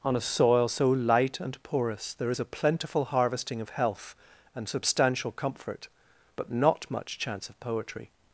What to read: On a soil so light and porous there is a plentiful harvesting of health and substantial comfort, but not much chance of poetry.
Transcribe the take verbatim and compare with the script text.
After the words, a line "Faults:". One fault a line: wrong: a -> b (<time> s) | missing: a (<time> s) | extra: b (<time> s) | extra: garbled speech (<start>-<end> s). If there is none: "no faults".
On a soil so light and porous there is a plentiful harvesting of health and substantial comfort, but not much chance of poetry.
Faults:
no faults